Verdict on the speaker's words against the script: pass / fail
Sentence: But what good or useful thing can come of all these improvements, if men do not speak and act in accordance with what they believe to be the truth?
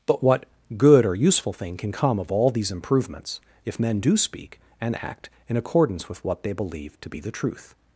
fail